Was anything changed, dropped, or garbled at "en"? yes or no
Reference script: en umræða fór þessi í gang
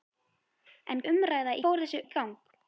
no